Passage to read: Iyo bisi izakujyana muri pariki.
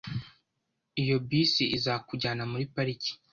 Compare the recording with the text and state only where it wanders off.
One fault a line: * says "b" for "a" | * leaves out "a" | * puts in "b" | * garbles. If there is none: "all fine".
all fine